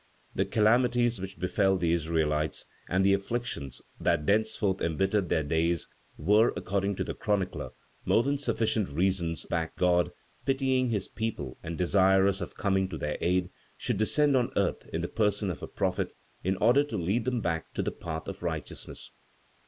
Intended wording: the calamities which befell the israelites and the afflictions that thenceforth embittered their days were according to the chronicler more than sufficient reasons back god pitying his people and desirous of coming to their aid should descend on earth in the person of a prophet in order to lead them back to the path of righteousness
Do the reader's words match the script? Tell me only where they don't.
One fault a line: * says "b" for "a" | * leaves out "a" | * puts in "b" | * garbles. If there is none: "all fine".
all fine